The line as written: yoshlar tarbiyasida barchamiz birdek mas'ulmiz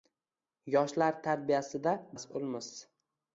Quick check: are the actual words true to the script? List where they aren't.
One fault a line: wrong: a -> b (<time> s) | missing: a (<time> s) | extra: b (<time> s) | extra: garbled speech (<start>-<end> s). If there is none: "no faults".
missing: barchamiz birdek (1.9 s)